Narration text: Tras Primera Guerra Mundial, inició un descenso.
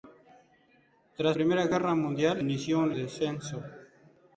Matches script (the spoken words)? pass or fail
pass